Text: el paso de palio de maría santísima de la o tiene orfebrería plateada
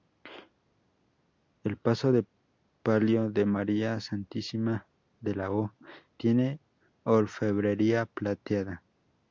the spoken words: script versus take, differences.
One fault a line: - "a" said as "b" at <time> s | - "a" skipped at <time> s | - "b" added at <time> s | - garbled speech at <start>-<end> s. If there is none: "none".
none